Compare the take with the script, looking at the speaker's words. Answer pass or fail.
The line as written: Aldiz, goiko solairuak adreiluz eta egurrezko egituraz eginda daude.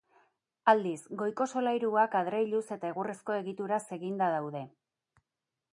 pass